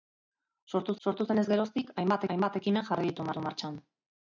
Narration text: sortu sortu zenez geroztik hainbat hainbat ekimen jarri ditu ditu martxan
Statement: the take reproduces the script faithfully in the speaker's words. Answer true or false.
true